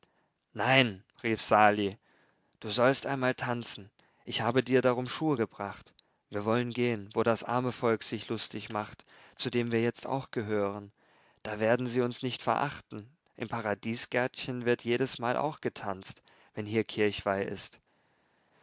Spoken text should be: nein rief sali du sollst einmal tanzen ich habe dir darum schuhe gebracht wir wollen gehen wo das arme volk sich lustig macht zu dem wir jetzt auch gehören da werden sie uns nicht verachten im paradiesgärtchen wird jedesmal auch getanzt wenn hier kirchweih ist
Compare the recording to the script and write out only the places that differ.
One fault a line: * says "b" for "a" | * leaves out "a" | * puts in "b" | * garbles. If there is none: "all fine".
all fine